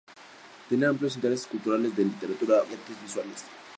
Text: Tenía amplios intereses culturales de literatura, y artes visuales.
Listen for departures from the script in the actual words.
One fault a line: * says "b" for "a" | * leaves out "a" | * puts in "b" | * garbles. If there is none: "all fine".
all fine